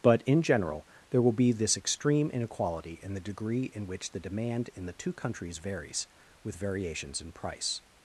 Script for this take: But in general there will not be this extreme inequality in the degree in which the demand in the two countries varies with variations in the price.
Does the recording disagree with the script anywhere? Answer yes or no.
yes